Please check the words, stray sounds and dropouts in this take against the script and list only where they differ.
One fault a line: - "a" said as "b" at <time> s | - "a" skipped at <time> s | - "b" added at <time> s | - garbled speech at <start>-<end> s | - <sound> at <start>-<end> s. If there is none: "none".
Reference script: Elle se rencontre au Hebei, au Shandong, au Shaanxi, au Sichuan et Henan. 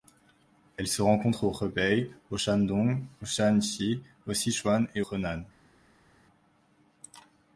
none